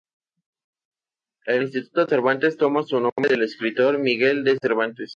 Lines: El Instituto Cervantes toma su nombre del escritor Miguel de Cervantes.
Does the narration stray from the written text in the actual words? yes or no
no